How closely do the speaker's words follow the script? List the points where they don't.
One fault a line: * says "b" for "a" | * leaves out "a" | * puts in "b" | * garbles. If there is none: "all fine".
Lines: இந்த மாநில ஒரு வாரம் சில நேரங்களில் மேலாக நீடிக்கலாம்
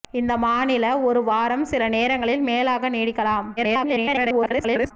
* garbles